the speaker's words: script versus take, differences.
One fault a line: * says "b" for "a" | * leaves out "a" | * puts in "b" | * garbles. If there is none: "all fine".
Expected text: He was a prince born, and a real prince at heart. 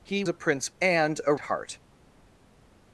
* leaves out "was"
* leaves out "born"
* leaves out "real prince at"